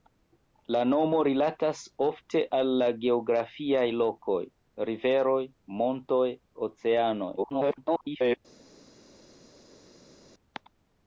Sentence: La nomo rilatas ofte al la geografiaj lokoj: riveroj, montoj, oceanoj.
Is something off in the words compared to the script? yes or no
yes